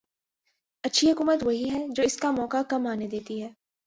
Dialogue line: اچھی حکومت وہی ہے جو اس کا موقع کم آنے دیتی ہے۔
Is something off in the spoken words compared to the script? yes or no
no